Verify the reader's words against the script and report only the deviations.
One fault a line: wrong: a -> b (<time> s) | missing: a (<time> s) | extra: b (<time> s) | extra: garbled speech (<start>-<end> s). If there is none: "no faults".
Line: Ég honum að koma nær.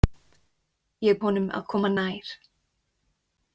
no faults